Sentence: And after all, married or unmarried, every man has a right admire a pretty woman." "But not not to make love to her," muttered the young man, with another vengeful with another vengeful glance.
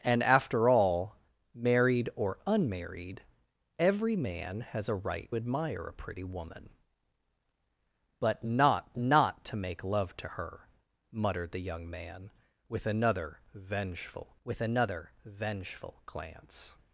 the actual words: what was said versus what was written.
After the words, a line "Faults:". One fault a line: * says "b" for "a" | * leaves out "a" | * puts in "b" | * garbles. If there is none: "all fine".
And after all, married or unmarried, every man has a right admire a pretty woman." "But not not to make love to her," muttered the young man, with another vengeful with another vengeful glance.
Faults:
all fine